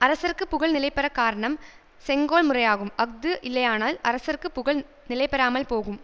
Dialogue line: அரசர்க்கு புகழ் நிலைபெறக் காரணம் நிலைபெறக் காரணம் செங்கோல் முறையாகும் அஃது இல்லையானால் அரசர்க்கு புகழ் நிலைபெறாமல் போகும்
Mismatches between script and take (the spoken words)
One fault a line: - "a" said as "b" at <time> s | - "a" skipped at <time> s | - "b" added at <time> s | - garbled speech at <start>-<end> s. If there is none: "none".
- "நிலைபெறக் காரணம்" skipped at 1.6 s